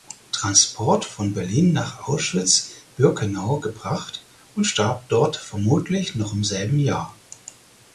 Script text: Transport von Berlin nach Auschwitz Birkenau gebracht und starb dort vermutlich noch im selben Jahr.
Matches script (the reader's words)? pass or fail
pass